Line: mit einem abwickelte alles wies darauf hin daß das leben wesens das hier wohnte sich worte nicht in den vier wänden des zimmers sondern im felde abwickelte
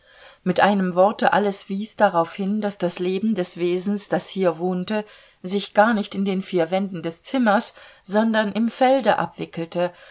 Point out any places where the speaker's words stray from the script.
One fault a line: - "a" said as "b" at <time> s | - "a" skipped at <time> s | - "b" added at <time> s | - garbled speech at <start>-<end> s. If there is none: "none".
- "abwickelte" said as "worte" at 0.9 s
- "des" added at 3.4 s
- "worte" said as "gar" at 5.7 s